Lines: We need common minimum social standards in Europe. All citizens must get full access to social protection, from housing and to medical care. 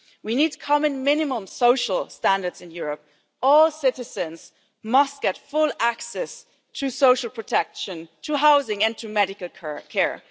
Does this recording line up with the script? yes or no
no